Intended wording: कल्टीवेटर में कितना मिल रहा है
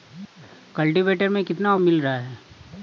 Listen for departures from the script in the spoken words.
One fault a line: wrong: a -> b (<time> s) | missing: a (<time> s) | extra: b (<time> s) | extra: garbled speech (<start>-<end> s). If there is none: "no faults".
no faults